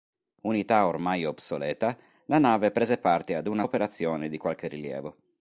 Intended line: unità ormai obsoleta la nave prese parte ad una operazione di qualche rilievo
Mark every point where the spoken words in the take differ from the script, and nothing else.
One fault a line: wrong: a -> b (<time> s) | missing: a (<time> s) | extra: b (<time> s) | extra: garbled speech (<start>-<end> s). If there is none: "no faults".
no faults